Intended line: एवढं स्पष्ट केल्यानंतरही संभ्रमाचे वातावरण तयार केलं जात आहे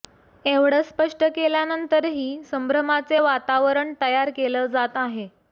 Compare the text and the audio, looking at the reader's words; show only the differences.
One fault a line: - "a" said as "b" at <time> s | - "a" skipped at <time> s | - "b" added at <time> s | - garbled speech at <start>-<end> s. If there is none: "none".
none